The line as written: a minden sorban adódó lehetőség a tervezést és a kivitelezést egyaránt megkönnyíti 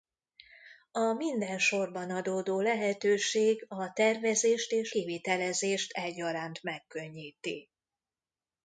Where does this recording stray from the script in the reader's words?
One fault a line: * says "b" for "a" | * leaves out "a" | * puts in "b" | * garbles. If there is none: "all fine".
* leaves out "a"